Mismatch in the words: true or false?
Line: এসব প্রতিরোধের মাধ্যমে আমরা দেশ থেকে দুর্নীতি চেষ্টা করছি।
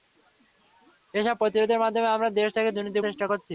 false